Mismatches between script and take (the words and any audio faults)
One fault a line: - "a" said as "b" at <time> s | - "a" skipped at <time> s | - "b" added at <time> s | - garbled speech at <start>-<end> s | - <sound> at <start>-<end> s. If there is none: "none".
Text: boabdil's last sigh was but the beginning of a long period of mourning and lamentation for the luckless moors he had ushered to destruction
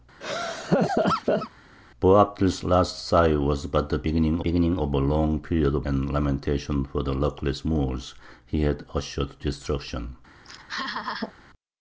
- laugh at 0.2-1.5 s
- "beginning" added at 4.4 s
- "mourning" skipped at 5.9 s
- "to" skipped at 9.4 s
- laugh at 10.4-11.3 s